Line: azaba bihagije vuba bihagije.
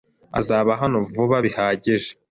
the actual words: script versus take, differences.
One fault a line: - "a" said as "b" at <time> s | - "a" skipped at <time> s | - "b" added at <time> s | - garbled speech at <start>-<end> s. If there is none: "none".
- "bihagije" said as "hano" at 0.8 s